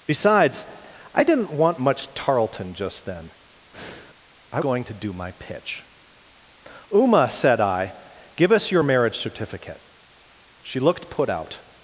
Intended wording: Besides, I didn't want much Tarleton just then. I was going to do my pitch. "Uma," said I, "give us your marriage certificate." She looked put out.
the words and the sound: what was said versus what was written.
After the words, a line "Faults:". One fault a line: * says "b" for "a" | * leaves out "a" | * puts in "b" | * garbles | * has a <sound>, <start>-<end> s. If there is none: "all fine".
Besides, I didn't want much Tarleton just then. I going to do my pitch. "Uma," said I, "give us your marriage certificate." She looked put out.
Faults:
* has a breath, 3.7-4.2 s
* leaves out "was"